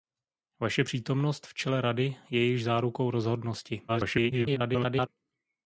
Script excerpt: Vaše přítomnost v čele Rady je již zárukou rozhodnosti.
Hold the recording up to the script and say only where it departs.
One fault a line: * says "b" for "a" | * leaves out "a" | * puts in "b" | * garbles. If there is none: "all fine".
* garbles